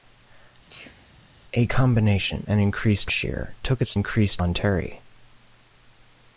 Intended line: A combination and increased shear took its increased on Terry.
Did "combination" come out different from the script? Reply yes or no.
no